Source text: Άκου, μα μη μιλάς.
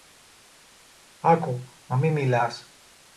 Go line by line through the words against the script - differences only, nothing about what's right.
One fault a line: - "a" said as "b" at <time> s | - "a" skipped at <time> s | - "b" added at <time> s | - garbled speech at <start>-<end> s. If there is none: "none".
none